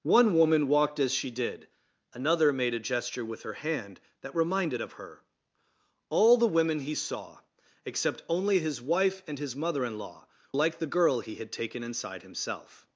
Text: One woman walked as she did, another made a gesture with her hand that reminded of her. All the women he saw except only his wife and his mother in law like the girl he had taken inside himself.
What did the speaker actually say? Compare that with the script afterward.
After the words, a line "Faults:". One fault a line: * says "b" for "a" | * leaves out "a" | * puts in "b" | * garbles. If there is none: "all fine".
One woman walked as she did, another made a gesture with her hand that reminded of her. All the women he saw except only his wife and his mother in law like the girl he had taken inside himself.
Faults:
all fine